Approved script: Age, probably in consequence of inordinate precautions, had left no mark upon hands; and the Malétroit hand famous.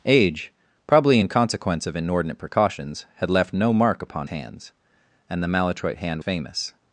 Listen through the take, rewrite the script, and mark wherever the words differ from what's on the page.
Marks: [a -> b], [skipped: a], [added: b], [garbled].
Age, probably in consequence of inordinate precautions, had left no mark upon hands; and the Malétroit hand famous.